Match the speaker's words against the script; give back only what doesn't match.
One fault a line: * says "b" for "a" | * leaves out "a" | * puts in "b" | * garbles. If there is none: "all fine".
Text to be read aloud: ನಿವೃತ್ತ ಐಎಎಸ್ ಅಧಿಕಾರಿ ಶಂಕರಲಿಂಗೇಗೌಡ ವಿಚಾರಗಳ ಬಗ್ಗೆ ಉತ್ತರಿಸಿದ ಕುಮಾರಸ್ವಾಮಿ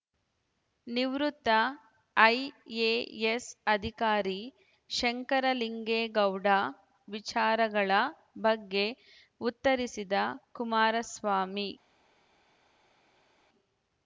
all fine